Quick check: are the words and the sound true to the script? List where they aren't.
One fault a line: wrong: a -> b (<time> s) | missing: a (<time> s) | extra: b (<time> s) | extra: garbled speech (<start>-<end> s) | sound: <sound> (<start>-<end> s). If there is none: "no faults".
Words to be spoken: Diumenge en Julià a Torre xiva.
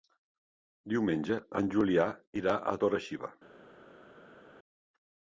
extra: irà (2.4 s)